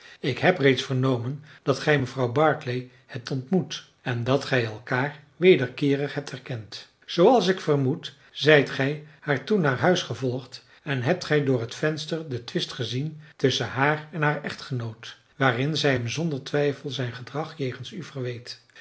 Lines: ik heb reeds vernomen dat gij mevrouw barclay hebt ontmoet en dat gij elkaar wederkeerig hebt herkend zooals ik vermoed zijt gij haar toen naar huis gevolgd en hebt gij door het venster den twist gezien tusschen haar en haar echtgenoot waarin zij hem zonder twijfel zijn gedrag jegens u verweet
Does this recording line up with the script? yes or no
yes